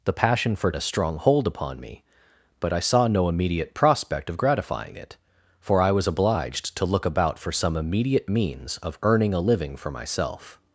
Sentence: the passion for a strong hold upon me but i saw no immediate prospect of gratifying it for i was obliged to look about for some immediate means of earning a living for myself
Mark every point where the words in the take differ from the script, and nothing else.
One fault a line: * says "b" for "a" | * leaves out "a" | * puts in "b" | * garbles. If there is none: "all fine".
all fine